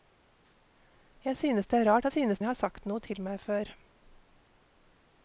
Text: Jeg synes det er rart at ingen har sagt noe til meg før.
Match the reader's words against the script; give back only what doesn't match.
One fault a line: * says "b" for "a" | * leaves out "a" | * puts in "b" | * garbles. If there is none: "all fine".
* says "synes" for "ingen"